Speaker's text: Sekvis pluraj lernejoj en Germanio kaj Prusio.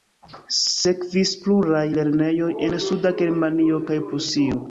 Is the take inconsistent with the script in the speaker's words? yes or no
yes